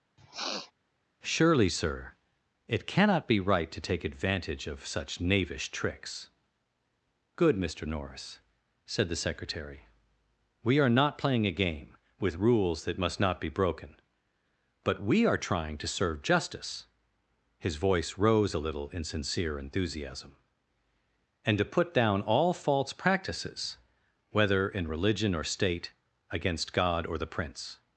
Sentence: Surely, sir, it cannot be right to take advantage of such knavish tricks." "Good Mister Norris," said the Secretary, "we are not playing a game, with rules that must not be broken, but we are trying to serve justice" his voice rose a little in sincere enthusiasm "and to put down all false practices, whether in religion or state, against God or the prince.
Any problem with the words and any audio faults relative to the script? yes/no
yes